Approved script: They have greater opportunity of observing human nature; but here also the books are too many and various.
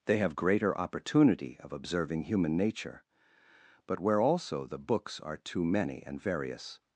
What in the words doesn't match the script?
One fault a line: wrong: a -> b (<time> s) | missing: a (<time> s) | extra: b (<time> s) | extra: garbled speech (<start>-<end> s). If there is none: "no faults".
wrong: here -> where (4.0 s)